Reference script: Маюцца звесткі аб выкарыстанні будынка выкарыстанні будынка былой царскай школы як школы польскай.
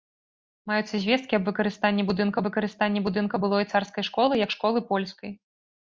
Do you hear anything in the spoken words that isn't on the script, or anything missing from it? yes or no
no